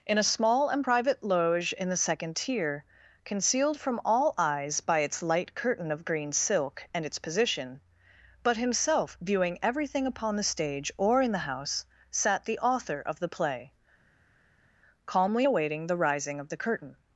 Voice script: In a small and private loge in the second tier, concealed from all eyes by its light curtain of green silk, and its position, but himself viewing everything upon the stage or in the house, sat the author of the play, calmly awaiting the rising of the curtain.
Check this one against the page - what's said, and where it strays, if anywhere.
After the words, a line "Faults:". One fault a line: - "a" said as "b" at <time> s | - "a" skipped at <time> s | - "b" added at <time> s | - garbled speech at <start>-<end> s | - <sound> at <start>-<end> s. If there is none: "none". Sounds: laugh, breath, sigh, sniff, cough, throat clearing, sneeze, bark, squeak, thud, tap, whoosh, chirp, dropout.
In a small and private loge in the second tier, concealed from all eyes by its light curtain of green silk, and its position, but himself viewing everything upon the stage or in the house, sat the author of the play, calmly awaiting the rising of the curtain.
Faults:
none